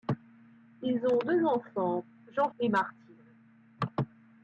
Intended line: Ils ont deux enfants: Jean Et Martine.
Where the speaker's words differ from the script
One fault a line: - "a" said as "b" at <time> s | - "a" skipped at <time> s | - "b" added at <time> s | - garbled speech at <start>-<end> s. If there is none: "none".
none